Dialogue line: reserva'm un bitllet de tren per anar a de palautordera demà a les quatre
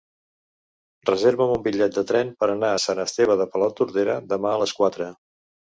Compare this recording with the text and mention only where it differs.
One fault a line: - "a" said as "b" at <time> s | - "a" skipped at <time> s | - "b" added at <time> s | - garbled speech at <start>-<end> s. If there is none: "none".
- "sant esteve" added at 2.9 s